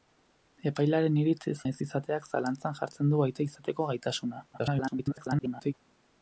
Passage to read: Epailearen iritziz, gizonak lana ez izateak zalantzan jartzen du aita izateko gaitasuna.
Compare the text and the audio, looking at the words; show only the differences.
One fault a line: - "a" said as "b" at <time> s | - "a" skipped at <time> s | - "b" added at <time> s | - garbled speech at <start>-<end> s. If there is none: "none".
- "gizonak lana" skipped at 1.5 s
- garbled speech at 4.5-5.7 s